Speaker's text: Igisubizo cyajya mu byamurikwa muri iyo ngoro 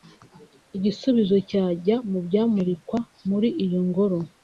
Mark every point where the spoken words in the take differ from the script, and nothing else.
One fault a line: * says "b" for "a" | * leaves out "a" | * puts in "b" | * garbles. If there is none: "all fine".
all fine